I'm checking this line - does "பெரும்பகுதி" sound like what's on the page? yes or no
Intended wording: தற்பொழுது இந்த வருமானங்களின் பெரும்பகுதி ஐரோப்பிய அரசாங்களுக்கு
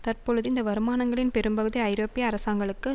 yes